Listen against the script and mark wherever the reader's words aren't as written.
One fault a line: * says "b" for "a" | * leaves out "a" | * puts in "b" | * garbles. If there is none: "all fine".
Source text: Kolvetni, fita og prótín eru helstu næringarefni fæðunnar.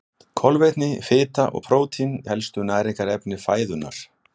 * leaves out "eru"